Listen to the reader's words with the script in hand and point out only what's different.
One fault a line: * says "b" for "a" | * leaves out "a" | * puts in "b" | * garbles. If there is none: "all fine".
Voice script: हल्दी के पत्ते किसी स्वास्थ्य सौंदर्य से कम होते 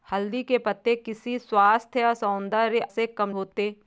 all fine